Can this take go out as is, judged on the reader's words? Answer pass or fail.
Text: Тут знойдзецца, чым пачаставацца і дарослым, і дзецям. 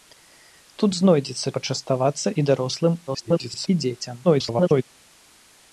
fail